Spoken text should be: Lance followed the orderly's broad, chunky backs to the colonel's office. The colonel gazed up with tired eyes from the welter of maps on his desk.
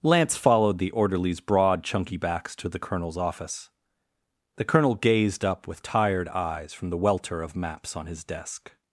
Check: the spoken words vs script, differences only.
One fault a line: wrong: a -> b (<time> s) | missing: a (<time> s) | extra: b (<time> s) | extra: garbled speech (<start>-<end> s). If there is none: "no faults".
no faults